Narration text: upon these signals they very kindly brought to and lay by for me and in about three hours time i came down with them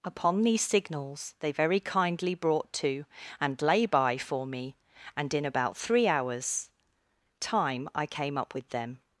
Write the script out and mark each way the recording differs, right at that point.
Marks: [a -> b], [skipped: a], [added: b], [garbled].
upon these signals they very kindly brought to and lay by for me and in about three hours time i came [down -> up] with them